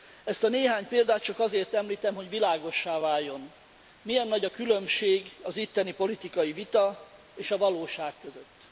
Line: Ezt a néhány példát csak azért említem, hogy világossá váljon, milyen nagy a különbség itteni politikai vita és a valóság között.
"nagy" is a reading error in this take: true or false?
false